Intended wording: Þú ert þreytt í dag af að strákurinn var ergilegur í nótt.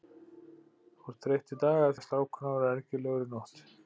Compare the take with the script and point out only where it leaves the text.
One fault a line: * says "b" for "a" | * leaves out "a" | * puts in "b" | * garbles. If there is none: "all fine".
all fine